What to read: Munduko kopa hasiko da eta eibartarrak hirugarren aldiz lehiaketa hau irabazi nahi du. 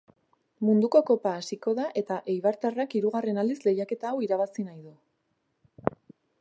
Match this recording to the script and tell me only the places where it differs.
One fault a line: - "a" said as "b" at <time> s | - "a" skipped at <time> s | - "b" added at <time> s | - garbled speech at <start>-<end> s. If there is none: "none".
none